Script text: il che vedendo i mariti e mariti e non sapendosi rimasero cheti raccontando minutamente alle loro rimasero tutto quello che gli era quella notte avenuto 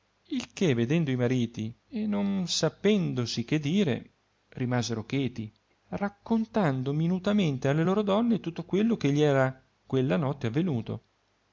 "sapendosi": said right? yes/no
no